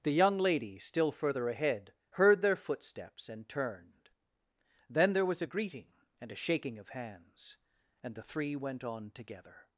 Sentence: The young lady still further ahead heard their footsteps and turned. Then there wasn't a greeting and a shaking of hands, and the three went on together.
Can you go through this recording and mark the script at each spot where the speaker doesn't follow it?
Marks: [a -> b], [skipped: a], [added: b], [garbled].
The young lady still further ahead heard their footsteps and turned. Then there [wasn't -> was] a greeting and a shaking of hands, and the three went on together.